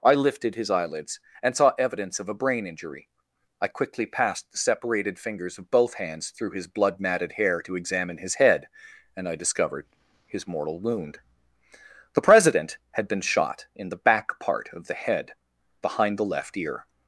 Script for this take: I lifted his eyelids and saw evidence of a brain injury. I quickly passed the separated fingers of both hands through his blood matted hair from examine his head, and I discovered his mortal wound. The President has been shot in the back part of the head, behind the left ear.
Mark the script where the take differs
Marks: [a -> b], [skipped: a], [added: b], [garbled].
I lifted his eyelids and saw evidence of a brain injury. I quickly passed the separated fingers of both hands through his blood matted hair [from -> to] examine his head, and I discovered his mortal wound. The President [has -> had] been shot in the back part of the head, behind the left ear.